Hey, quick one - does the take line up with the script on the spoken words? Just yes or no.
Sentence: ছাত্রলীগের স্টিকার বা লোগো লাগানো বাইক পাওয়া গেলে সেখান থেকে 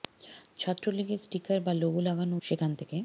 no